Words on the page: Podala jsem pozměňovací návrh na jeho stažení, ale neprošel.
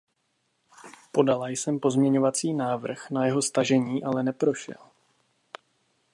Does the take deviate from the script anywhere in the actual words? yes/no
no